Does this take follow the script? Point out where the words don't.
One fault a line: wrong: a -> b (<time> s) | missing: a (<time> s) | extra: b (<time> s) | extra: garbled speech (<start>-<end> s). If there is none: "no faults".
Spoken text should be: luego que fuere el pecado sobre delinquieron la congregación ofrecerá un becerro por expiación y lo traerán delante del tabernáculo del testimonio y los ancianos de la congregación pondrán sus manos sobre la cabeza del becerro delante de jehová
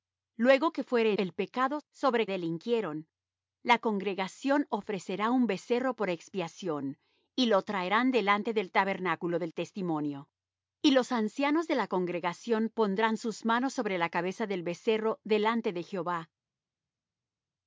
no faults